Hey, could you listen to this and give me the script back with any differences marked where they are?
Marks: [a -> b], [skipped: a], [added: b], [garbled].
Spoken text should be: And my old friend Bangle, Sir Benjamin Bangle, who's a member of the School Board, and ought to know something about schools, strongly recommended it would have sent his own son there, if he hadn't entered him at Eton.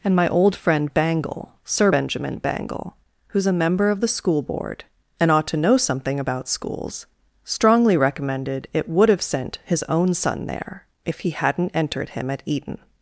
And my old friend Bangle, Sir Benjamin Bangle, who's a member of the School Board, and ought to know something about schools, strongly recommended it would have sent his own son there, if he hadn't entered him at Eton.